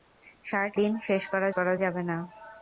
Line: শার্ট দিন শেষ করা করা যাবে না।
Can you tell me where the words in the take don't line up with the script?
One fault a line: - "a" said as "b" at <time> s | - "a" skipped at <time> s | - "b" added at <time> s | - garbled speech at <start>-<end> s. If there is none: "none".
none